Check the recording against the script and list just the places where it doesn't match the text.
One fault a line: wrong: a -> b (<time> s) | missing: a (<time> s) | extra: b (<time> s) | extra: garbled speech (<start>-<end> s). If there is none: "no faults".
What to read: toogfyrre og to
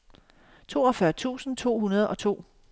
extra: tusind to hundrede (1.1 s)